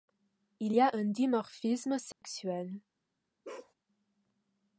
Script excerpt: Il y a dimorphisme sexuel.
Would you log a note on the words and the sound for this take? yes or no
yes